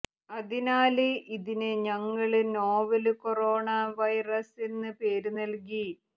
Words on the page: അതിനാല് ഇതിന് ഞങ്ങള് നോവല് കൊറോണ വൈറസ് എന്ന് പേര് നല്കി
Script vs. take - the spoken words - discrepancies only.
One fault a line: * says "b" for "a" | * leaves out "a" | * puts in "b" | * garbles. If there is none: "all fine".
all fine